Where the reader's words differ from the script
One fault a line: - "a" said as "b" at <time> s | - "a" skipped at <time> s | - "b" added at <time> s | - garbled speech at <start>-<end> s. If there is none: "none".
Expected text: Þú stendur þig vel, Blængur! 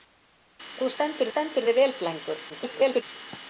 - "stendur" added at 1.3 s
- garbled speech at 2.5-3.0 s